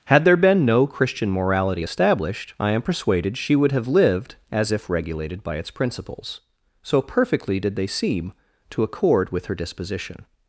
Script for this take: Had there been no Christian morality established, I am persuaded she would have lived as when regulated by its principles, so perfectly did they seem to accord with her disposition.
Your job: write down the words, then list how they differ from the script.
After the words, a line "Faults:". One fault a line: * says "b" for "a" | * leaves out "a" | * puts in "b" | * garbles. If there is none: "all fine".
Had there been no Christian morality established, I am persuaded she would have lived as if regulated by its principles, so perfectly did they seem to accord with her disposition.
Faults:
* says "if" for "when"